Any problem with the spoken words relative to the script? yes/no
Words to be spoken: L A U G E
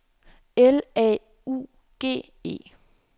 no